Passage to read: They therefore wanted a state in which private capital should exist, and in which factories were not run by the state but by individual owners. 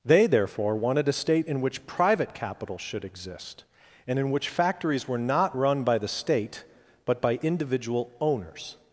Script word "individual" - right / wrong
right